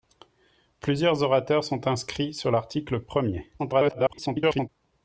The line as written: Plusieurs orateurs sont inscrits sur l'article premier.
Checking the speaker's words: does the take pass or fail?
fail